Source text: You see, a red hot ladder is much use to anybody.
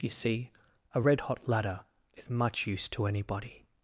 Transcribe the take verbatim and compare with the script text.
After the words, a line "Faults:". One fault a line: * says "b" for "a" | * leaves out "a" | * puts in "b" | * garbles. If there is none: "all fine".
You see, a red hot ladder is much use to anybody.
Faults:
all fine